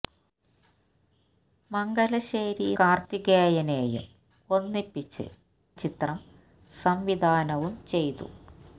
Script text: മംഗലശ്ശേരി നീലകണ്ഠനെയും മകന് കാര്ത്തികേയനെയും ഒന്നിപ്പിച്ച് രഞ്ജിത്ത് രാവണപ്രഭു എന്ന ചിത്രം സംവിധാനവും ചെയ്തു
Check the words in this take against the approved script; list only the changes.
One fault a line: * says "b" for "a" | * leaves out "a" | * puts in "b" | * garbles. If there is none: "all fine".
* leaves out "നീലകണ്ഠനെയും മകന്"
* leaves out "രഞ്ജിത്ത് രാവണപ്രഭു എന്ന"